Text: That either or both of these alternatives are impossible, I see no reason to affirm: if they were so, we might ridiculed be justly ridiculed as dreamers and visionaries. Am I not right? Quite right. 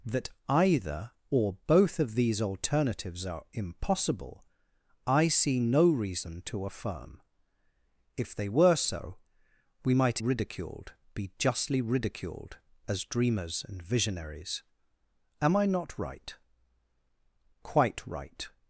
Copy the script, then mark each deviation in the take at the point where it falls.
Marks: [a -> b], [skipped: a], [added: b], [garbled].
That either or both of these alternatives are impossible, I see no reason to affirm: if they were so, we might ridiculed be justly ridiculed as dreamers and visionaries. Am I not right? Quite right.